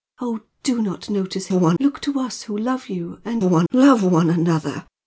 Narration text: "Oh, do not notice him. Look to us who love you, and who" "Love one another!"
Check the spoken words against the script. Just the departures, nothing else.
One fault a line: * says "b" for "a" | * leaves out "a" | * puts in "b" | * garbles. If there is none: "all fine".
* says "one" for "him"
* says "one" for "who"